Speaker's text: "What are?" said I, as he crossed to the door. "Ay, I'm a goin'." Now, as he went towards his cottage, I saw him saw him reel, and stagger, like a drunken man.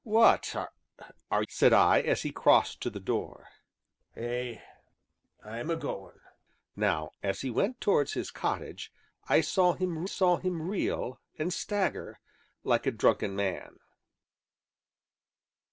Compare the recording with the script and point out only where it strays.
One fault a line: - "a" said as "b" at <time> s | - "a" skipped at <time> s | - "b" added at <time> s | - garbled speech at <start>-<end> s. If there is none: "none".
none